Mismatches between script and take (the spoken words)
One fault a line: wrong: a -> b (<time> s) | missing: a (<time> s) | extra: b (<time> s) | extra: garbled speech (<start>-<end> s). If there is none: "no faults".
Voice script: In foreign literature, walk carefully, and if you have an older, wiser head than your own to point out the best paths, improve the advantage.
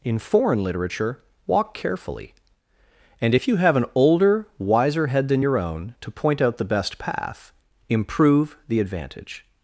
wrong: paths -> path (7.0 s)